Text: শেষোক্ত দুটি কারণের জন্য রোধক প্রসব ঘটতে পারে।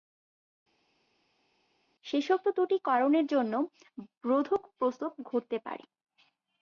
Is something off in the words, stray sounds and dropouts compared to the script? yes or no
no